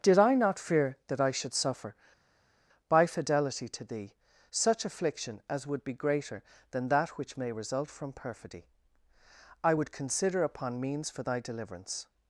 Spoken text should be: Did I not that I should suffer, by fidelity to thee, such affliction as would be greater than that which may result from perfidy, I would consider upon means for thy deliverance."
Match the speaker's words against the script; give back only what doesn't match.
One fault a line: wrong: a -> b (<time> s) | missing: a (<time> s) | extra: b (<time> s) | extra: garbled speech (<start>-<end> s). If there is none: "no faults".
extra: fear (0.6 s)